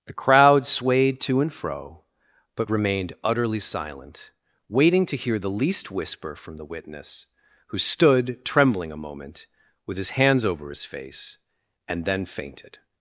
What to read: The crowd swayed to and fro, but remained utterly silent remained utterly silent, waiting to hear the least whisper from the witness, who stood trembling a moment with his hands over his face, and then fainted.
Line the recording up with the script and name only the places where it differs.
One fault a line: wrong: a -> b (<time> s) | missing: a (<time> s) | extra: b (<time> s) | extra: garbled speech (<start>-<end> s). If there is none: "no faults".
missing: remained utterly silent (4.3 s)